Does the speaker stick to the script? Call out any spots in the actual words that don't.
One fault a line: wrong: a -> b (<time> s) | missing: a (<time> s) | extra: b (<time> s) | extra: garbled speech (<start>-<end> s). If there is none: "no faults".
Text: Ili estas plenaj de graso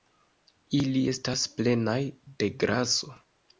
no faults